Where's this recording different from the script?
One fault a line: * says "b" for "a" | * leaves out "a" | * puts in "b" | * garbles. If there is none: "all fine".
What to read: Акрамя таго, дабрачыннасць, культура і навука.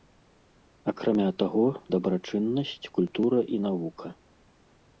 all fine